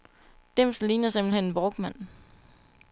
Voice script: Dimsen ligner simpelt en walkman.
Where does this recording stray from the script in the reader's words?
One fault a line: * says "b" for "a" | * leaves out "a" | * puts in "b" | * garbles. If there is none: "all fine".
* puts in "hen"